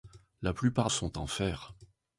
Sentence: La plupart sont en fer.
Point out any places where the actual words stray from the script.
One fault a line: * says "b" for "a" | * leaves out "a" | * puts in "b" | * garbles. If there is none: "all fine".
all fine